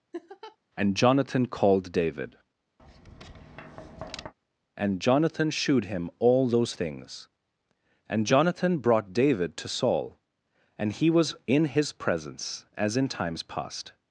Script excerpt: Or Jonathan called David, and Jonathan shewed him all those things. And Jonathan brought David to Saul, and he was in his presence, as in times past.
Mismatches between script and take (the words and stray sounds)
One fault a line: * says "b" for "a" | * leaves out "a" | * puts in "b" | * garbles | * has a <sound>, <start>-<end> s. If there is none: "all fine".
* has a laugh, 0.1-0.6 s
* says "And" for "Or"
* has a tap, 2.8-4.3 s